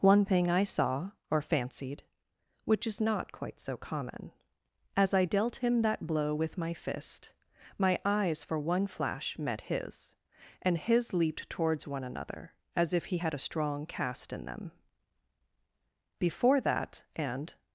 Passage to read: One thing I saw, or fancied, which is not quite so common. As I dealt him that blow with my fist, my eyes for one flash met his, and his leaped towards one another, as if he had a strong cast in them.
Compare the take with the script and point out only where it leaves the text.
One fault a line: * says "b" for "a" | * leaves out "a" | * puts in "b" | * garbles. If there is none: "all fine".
* puts in "Before that and"